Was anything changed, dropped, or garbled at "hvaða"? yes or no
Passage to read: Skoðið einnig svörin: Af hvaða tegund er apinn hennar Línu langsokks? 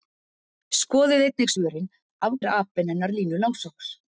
yes